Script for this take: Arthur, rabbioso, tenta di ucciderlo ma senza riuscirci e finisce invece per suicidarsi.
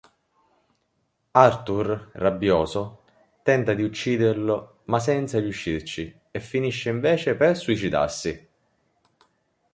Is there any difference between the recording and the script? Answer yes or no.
no